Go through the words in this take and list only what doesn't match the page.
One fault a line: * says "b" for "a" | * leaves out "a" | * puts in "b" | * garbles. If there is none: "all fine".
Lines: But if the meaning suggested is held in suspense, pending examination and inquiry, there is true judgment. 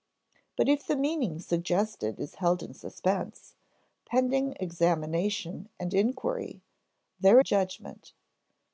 * leaves out "is true"